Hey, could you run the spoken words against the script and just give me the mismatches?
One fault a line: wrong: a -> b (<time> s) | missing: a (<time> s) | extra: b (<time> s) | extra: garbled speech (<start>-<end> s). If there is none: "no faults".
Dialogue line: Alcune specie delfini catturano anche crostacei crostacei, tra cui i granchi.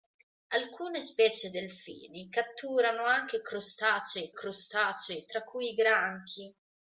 no faults